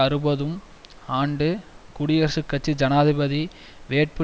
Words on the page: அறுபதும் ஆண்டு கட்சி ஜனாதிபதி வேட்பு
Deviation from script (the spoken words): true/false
true